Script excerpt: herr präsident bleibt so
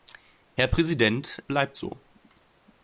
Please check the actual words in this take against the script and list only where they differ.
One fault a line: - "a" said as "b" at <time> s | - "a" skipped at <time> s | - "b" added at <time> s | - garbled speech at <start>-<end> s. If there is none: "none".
none